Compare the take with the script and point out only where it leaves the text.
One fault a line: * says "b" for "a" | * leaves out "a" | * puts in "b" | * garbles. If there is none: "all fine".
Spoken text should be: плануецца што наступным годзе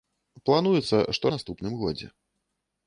all fine